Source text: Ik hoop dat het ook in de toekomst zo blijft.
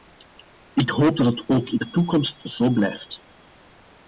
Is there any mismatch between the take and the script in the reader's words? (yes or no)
no